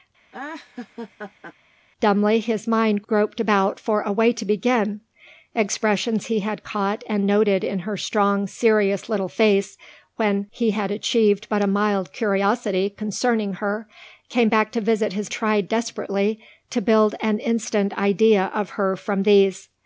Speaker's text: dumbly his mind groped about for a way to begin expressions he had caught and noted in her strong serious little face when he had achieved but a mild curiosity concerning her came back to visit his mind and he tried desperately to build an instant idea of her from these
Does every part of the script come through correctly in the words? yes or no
no